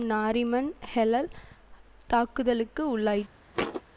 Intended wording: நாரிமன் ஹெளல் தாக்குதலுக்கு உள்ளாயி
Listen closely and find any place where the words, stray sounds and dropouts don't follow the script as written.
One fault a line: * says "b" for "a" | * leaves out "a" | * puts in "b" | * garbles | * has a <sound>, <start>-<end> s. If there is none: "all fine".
* has a thud, 3.5-3.8 s